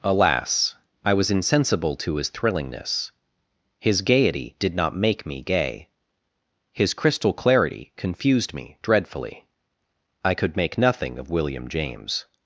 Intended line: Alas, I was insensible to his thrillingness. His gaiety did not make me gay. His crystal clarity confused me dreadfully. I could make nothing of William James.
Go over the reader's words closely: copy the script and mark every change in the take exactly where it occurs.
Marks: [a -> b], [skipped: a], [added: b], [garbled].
Alas, I was insensible to his thrillingness. His gaiety did not make me gay. His crystal clarity confused me dreadfully. I could make nothing of William James.